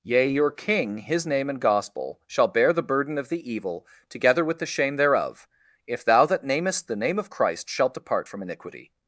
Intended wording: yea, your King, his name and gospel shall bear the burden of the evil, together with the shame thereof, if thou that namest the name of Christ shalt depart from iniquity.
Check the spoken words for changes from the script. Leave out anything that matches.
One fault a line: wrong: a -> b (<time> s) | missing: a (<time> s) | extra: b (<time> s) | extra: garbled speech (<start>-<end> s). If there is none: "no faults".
no faults